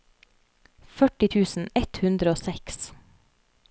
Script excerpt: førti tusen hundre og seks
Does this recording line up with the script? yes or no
no